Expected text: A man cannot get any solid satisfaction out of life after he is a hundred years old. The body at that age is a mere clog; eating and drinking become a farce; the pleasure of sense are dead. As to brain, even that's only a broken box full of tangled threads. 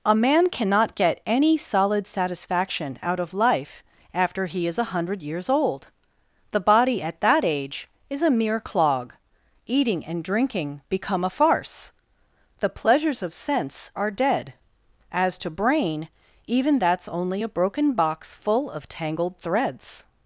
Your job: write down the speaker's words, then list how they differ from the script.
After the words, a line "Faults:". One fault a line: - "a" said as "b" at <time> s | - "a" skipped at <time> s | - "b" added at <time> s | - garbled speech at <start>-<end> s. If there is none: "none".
A man cannot get any solid satisfaction out of life after he is a hundred years old. The body at that age is a mere clog; eating and drinking become a farce; the pleasures of sense are dead. As to brain, even that's only a broken box full of tangled threads.
Faults:
- "pleasure" said as "pleasures" at 12.7 s